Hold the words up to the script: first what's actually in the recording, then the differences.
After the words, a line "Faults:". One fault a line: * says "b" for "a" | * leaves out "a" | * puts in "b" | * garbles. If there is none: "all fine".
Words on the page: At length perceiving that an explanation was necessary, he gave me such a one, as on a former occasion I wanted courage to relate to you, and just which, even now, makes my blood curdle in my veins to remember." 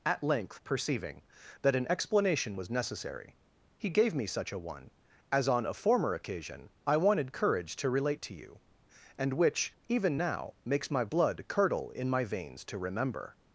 At length perceiving that an explanation was necessary, he gave me such a one, as on a former occasion I wanted courage to relate to you, and which, even now, makes my blood curdle in my veins to remember."
Faults:
* leaves out "just"